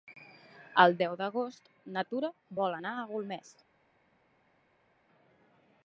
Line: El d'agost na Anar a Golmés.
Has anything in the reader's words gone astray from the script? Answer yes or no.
yes